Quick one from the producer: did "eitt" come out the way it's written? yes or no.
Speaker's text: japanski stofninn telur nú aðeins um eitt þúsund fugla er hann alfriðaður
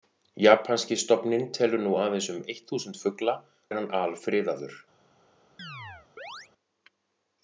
yes